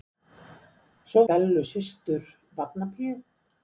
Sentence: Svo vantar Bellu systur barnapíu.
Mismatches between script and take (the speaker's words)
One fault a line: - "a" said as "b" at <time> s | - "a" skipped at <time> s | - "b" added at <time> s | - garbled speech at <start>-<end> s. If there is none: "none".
- "vantar" skipped at 1.2 s